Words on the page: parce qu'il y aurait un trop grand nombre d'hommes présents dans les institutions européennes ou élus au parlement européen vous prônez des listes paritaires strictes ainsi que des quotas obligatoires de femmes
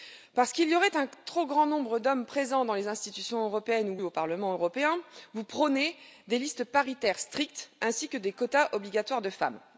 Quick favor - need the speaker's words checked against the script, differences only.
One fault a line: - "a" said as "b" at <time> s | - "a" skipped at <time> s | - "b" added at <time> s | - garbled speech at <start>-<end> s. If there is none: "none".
- "élus" skipped at 4.0 s